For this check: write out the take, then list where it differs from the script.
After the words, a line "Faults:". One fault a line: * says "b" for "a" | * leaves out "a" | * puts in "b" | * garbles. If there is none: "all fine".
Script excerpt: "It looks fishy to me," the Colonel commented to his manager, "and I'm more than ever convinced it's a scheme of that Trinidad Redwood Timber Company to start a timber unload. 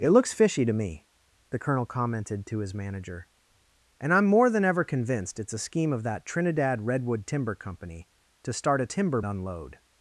"It looks fishy to me," the Colonel commented to his manager, "and I'm more than ever convinced it's a scheme of that Trinidad Redwood Timber Company to start a timber unload.
Faults:
all fine